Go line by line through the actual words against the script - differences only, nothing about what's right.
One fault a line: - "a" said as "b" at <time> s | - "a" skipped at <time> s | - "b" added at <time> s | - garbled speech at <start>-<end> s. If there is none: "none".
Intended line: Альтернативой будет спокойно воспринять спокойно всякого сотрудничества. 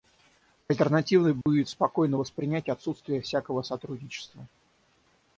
- "спокойно" said as "отсутствие" at 2.7 s